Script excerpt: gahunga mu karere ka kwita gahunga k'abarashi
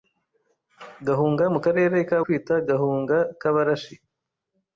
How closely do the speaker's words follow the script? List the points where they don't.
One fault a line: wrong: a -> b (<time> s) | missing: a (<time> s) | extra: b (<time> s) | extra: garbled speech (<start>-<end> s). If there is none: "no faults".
no faults